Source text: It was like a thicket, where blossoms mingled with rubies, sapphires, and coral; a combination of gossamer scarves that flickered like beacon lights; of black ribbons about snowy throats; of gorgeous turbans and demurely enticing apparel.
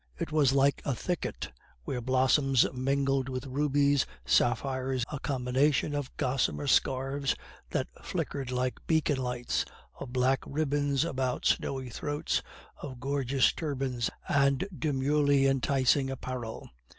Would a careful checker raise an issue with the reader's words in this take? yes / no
yes